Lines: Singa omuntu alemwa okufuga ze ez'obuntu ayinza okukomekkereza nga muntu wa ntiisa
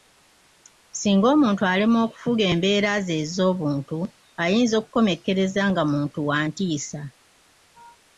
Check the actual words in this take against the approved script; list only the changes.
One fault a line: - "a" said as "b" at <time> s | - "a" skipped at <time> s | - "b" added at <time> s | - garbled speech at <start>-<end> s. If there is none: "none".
- "embeera" added at 2.5 s